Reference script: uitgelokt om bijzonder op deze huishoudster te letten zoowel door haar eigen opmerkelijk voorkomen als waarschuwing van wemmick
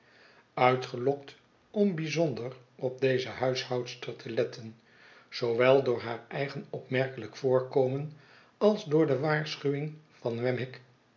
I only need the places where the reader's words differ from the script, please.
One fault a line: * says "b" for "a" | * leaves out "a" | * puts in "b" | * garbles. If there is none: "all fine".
* puts in "door de"